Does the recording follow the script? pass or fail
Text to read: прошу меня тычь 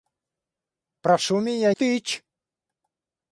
pass